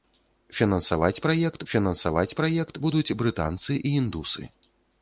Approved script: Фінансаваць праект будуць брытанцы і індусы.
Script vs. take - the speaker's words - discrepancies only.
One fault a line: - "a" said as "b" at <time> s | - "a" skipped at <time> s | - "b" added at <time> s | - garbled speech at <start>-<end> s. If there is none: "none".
- "фінансаваць праект" added at 1.7 s